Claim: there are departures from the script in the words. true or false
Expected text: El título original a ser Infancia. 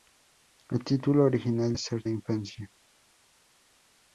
false